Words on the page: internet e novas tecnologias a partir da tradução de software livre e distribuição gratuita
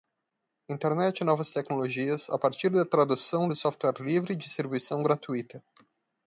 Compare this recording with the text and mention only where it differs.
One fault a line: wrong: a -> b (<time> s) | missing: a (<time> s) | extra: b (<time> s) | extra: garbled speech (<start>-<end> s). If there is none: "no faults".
no faults